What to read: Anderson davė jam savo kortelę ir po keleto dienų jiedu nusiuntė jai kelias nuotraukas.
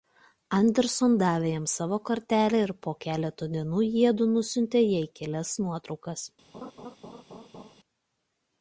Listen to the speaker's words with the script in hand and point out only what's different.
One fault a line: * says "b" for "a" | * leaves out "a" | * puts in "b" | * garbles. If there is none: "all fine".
all fine